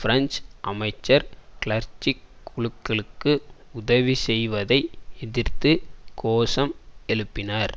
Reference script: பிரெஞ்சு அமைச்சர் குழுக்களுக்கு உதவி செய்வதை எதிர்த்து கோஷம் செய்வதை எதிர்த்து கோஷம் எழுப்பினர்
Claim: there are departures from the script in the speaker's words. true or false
true